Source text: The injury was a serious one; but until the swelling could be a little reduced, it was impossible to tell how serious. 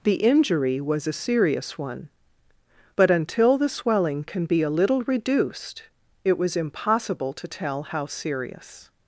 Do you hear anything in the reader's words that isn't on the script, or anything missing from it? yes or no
yes